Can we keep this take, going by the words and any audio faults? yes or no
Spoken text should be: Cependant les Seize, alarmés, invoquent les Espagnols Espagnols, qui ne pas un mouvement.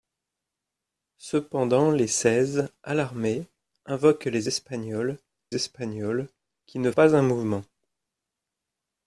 yes